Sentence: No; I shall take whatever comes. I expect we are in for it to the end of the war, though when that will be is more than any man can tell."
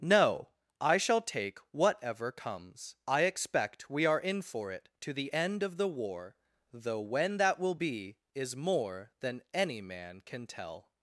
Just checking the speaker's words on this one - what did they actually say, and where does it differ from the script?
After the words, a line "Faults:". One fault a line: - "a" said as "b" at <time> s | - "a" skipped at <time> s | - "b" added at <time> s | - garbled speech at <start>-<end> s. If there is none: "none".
No; I shall take whatever comes. I expect we are in for it to the end of the war, though when that will be is more than any man can tell."
Faults:
none